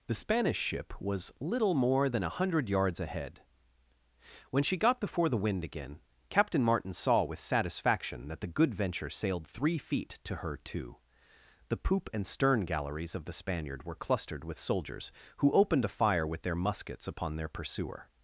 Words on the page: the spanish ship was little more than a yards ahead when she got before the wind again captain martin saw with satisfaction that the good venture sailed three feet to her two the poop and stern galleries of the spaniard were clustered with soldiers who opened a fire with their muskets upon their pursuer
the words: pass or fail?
fail